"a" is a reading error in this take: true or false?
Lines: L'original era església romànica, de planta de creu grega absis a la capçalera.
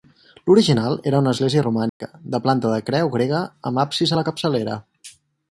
false